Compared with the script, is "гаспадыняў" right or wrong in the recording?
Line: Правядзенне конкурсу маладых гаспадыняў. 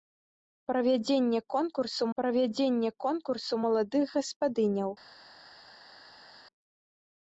right